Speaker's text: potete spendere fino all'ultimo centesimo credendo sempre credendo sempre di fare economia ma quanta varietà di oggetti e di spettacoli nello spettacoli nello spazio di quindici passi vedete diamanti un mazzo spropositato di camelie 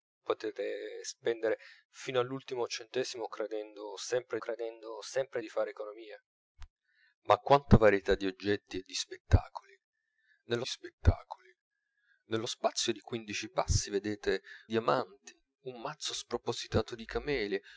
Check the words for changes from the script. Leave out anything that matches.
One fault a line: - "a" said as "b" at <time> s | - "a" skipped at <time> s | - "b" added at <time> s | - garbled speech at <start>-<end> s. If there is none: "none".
none